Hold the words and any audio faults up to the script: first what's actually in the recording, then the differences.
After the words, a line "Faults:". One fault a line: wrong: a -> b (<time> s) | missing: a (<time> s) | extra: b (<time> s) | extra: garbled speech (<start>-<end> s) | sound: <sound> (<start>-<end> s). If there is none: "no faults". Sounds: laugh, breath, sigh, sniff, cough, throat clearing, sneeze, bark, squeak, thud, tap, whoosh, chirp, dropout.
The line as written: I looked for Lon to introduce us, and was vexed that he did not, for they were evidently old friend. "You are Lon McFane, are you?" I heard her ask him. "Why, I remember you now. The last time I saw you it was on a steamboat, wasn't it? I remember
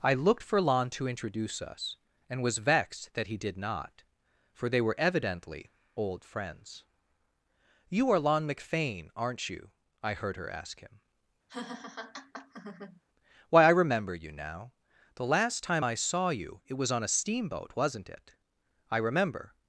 I looked for Lon to introduce us, and was vexed that he did not, for they were evidently old friends. "You are Lon McFane, aren't you?" I heard her ask him. "Why, I remember you now. The last time I saw you it was on a steamboat, wasn't it? I remember
Faults:
wrong: friend -> friends (6.2 s)
wrong: are -> aren't (9.1 s)
sound: laugh (11.5-13.0 s)